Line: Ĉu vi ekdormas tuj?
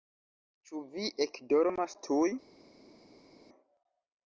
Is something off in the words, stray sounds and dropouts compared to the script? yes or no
no